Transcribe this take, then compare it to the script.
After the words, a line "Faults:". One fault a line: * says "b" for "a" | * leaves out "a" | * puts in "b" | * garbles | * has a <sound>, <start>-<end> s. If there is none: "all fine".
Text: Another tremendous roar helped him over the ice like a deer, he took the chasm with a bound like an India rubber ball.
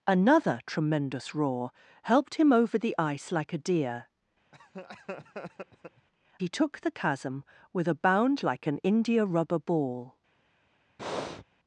Another tremendous roar helped him over the ice like a deer, he took the chasm with a bound like an India rubber ball.
Faults:
* has a laugh, 4.5-6.1 s
* has a breath, 11.0-11.4 s